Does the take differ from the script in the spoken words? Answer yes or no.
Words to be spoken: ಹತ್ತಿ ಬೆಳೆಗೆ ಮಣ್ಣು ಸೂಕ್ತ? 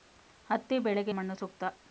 no